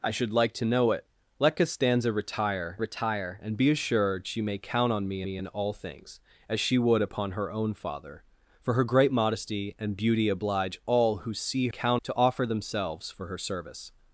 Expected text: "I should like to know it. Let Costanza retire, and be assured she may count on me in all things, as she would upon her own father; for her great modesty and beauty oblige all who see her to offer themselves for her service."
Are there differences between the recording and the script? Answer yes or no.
yes